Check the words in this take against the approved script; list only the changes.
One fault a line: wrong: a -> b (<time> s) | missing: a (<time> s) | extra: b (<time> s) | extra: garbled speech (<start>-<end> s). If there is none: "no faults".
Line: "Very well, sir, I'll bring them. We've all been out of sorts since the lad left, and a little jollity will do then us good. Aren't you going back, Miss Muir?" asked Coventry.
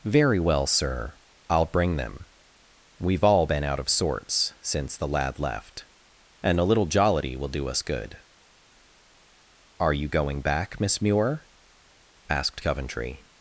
missing: then (7.7 s)
wrong: Aren't -> Are (9.8 s)